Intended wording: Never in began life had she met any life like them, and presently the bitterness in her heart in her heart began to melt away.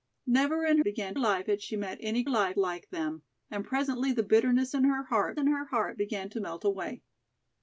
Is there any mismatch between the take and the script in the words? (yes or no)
no